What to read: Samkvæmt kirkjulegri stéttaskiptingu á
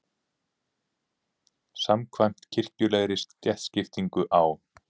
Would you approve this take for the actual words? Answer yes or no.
yes